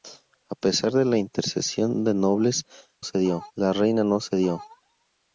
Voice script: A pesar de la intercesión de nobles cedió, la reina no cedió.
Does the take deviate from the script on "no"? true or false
false